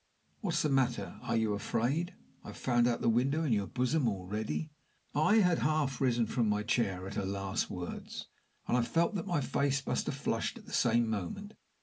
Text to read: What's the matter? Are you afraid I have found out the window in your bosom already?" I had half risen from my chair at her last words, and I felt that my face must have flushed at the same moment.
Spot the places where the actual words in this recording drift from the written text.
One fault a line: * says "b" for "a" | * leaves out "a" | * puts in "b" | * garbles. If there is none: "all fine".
all fine